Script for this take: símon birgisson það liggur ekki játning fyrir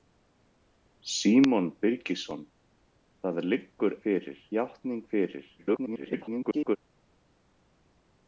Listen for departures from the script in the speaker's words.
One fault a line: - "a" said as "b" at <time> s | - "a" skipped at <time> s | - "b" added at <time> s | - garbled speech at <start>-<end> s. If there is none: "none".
- "ekki" said as "fyrir" at 4.1 s
- garbled speech at 5.6-6.8 s